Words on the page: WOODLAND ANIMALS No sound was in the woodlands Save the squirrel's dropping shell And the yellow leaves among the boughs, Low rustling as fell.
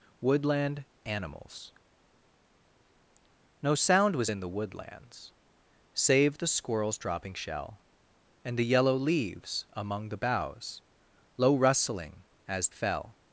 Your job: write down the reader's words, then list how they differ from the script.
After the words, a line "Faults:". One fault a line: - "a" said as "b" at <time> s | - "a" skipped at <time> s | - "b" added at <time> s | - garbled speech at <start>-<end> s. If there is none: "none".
WOODLAND ANIMALS No sound was in the woodlands Save the squirrel's dropping shell And the yellow leaves among the boughs, Low rustling as fell.
Faults:
none